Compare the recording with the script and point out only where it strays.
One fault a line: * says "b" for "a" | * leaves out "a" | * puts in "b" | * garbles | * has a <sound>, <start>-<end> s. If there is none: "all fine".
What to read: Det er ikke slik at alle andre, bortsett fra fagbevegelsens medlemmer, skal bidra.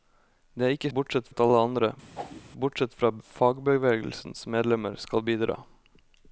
* says "bortsett" for "slik"
* has a whoosh, 2.1-2.4 s